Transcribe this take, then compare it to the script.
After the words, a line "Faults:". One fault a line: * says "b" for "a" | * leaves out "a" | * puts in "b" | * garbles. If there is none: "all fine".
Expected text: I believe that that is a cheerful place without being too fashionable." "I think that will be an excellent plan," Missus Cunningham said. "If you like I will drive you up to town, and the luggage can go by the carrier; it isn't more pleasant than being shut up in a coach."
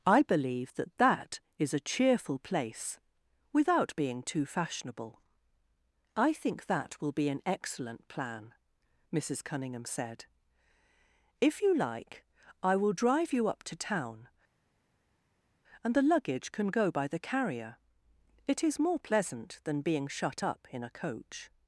I believe that that is a cheerful place without being too fashionable." "I think that will be an excellent plan," Missus Cunningham said. "If you like I will drive you up to town, and the luggage can go by the carrier; it is more pleasant than being shut up in a coach."
Faults:
* says "is" for "isn't"